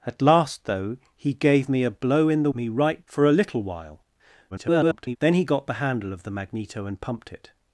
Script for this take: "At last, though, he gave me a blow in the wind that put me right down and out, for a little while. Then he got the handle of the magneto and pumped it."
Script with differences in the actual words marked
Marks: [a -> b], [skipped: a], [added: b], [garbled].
"At last, though, he gave me a blow in the [skipped: wind that put] me right [skipped: down and out,] for a little while. [garbled] Then he got the handle of the magneto and pumped it."